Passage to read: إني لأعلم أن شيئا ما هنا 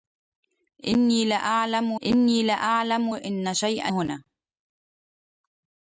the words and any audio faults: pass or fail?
fail